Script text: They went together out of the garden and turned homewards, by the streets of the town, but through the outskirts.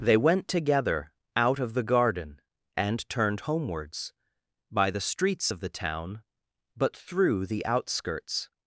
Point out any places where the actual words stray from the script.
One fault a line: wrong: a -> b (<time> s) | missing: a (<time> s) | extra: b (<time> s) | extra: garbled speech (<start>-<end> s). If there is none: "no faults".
no faults